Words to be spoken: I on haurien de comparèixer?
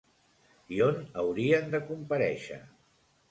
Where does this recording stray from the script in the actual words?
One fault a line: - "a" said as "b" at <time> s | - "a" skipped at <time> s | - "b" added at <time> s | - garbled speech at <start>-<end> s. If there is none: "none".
none